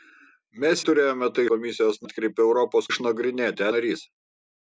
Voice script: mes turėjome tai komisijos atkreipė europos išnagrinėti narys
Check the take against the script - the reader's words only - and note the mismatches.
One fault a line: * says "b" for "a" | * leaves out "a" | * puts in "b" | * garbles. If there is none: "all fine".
all fine